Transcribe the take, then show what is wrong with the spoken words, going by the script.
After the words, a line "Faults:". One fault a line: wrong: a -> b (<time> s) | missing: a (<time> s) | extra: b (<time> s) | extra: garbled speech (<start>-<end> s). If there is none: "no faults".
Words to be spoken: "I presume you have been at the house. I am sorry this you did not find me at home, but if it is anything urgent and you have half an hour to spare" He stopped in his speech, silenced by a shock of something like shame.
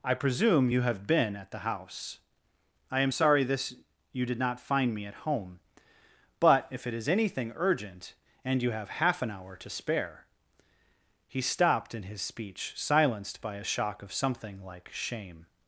"I presume you have been at the house. I am sorry this you did not find me at home, but if it is anything urgent and you have half an hour to spare" He stopped in his speech, silenced by a shock of something like shame.
Faults:
no faults